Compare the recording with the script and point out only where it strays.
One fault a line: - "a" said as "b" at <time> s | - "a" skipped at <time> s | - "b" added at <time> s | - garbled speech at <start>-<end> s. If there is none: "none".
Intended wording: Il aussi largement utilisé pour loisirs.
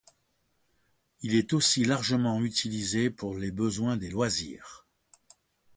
- "est" added at 1.4 s
- "les besoins des" added at 3.4 s